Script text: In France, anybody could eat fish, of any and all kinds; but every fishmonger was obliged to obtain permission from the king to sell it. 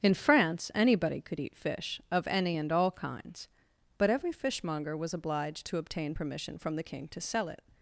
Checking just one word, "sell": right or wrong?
right